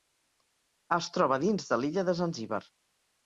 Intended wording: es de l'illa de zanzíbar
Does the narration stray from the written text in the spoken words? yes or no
yes